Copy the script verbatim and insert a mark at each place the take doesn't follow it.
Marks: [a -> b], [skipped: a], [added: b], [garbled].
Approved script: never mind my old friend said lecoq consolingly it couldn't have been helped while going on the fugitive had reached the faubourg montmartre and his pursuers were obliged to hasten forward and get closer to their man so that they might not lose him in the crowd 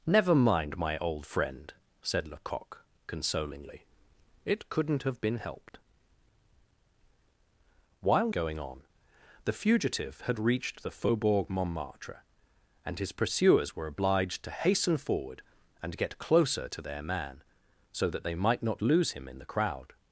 never mind my old friend said lecoq consolingly it couldn't have been helped while going on the fugitive had reached the faubourg montmartre and his pursuers were obliged to hasten forward and get closer to their man so that they might not lose him in the crowd